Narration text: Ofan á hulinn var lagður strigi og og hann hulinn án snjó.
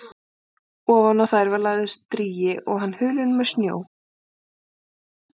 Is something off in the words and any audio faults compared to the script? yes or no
yes